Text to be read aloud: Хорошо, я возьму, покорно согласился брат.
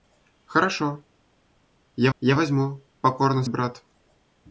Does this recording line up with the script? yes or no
no